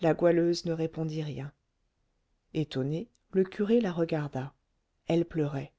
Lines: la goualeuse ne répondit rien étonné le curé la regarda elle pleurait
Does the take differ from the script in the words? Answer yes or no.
no